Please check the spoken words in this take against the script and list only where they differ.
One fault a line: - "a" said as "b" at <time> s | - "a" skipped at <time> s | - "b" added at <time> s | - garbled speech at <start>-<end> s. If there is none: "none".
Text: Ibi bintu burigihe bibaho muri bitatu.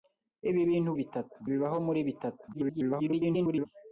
- "burigihe" said as "bitatu" at 1.0 s
- garbled speech at 2.5-3.7 s